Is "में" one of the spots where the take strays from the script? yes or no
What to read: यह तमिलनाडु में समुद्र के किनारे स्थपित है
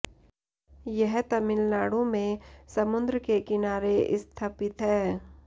no